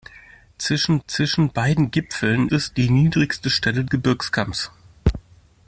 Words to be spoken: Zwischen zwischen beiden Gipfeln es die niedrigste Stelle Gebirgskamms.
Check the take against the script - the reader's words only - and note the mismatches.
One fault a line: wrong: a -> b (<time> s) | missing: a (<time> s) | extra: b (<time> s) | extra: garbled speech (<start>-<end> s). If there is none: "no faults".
no faults